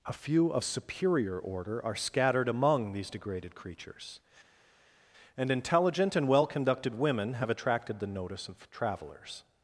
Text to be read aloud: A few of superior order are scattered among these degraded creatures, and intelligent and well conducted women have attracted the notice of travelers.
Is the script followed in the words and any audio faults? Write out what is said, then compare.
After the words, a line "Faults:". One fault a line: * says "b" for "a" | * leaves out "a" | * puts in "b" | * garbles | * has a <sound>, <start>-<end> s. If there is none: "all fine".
A few of superior order are scattered among these degraded creatures, and intelligent and well conducted women have attracted the notice of travelers.
Faults:
all fine